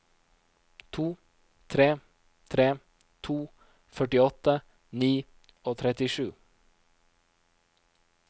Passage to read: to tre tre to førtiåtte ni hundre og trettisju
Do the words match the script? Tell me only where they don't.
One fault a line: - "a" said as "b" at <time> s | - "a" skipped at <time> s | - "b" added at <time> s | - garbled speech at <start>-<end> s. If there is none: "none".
- "hundre" skipped at 5.1 s